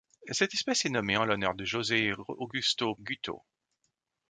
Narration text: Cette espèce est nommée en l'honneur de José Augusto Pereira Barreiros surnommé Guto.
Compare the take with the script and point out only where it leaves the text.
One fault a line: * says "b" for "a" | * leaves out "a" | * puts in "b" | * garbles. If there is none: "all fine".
* leaves out "Pereira Barreiros surnommé"